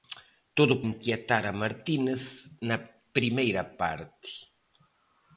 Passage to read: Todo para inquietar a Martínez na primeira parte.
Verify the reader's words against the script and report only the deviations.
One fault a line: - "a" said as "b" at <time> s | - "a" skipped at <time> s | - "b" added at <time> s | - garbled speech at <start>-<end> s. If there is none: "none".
- "para" skipped at 0.8 s